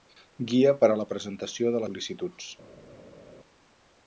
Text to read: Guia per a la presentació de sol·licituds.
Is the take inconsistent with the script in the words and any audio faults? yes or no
no